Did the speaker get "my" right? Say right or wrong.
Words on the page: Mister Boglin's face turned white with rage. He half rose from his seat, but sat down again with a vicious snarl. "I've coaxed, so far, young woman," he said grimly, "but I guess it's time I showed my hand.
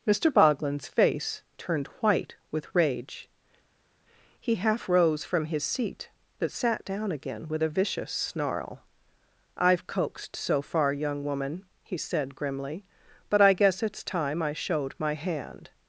right